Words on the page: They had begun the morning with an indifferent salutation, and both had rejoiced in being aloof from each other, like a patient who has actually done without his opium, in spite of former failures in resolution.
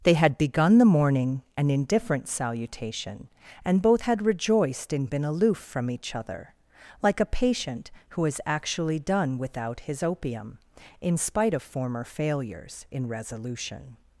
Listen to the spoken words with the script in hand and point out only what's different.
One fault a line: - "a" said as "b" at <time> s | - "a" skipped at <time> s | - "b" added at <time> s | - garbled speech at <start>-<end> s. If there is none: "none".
- "with" skipped at 1.4 s
- "being" said as "been" at 5.0 s